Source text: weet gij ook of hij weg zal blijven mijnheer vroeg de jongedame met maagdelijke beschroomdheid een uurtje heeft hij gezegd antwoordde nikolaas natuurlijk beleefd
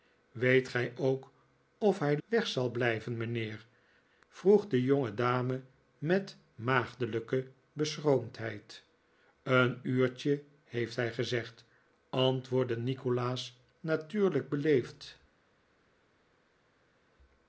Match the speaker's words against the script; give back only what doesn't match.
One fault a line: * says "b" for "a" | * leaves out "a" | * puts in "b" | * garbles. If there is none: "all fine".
all fine